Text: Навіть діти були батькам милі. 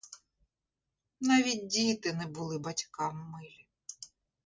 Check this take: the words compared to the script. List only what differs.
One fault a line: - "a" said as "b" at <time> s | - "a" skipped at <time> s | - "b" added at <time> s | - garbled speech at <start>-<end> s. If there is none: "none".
- "не" added at 2.1 s